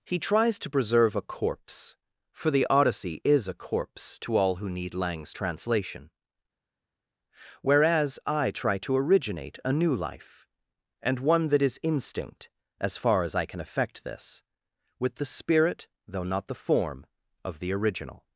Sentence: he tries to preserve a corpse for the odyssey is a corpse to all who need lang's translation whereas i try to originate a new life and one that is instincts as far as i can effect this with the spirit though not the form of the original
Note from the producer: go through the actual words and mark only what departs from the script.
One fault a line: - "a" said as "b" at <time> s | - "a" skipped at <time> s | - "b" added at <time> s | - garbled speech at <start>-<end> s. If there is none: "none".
- "instincts" said as "instinct" at 11.8 s